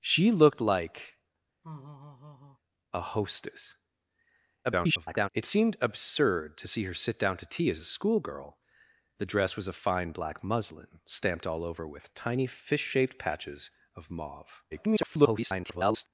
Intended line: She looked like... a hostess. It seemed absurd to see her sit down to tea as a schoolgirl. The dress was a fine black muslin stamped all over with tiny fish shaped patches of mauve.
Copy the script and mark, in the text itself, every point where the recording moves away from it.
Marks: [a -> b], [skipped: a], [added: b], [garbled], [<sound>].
She looked like... [laugh] a hostess. [garbled] It seemed absurd to see her sit down to tea as a schoolgirl. The dress was a fine black muslin stamped all over with tiny fish shaped patches of mauve. [garbled]